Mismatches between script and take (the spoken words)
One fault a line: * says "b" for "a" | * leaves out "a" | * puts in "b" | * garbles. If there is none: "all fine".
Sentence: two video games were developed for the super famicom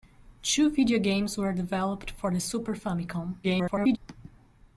* garbles